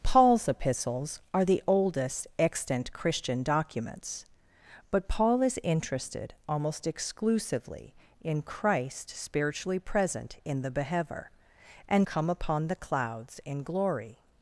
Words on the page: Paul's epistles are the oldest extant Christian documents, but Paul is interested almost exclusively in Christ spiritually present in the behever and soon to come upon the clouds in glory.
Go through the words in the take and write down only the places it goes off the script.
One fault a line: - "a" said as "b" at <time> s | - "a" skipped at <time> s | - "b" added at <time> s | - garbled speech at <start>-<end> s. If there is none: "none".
- "soon to" skipped at 12.1 s